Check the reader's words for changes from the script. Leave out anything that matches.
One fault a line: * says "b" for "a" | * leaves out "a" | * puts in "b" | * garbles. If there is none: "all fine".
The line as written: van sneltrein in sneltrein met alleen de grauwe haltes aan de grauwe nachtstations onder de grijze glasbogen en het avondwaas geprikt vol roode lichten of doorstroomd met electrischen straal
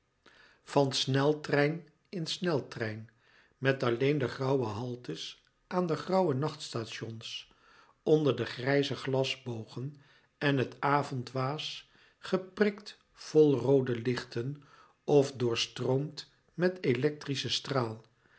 all fine